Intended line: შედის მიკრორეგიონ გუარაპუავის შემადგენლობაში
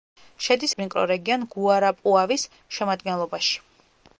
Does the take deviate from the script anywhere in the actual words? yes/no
no